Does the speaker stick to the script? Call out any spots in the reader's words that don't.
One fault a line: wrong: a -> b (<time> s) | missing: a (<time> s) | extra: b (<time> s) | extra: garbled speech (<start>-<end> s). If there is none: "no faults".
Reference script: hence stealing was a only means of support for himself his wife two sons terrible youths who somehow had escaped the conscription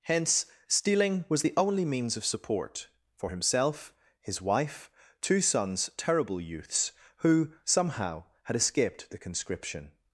wrong: a -> the (1.4 s)